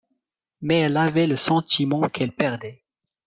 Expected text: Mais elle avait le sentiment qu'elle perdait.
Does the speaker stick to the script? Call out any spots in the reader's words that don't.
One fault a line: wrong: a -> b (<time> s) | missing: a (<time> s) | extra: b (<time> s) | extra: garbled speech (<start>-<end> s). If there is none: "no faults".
no faults